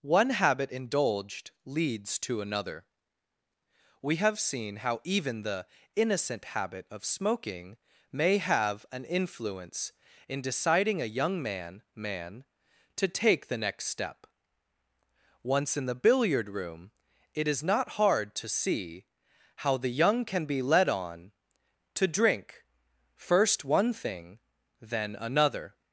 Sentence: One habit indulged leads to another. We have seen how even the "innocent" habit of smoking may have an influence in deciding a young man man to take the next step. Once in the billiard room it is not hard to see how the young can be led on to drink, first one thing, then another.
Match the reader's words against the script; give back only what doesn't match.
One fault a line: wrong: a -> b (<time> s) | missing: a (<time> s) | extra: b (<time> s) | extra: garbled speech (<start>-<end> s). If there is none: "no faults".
no faults